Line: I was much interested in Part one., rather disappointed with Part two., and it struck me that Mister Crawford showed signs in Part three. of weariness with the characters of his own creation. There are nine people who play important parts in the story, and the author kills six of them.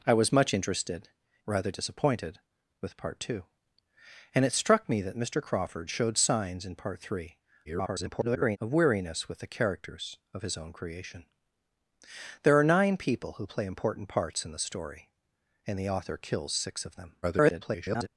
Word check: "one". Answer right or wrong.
wrong